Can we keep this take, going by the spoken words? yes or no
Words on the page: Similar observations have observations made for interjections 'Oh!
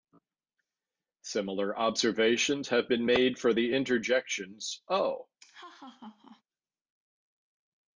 no